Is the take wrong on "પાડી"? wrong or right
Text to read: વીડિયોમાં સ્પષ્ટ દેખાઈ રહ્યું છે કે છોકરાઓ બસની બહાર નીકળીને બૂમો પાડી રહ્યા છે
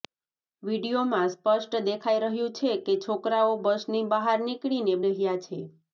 wrong